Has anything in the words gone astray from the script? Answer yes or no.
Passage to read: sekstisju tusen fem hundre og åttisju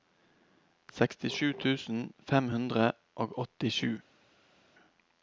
no